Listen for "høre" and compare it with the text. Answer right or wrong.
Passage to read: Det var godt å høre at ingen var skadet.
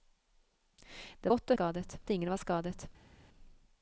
wrong